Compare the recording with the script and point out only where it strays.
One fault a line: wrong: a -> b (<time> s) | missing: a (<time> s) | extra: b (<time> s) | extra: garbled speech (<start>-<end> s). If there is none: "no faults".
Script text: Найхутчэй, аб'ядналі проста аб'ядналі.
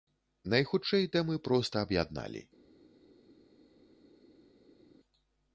wrong: аб'ядналі -> тэмы (1.1 s)